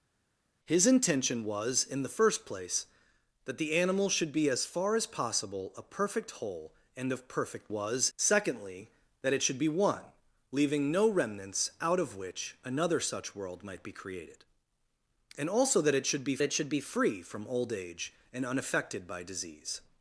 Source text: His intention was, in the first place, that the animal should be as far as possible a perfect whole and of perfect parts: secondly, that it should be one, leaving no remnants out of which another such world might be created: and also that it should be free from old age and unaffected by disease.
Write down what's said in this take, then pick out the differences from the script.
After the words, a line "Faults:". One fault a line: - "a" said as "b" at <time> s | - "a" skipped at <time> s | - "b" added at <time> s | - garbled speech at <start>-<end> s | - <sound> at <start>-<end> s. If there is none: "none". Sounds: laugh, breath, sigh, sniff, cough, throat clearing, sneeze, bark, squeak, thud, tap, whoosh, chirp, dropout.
His intention was, in the first place, that the animal should be as far as possible a perfect whole and of perfect was: secondly, that it should be one, leaving no remnants out of which another such world might be created: and also that it should be it should be free from old age and unaffected by disease.
Faults:
- "parts" said as "was" at 7.7 s
- "it should be" added at 16.4 s